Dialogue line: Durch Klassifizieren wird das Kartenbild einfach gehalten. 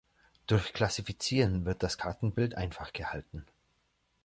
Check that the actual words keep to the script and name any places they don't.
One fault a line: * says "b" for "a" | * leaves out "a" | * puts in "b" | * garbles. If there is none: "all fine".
all fine